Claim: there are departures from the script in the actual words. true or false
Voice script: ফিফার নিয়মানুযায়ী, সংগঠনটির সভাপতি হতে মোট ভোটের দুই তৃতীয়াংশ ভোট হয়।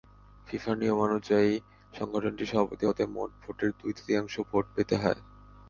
true